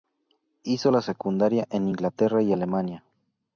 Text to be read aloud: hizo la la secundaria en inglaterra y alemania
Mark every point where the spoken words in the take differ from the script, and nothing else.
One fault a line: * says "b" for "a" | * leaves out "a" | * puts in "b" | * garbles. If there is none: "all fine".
* leaves out "la"